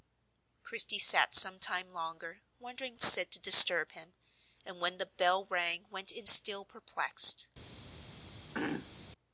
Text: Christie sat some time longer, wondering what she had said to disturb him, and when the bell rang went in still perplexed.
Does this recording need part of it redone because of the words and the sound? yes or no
yes